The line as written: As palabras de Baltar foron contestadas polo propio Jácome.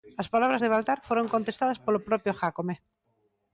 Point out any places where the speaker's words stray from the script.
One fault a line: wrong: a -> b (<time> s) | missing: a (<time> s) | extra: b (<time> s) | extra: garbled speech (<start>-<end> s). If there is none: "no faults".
no faults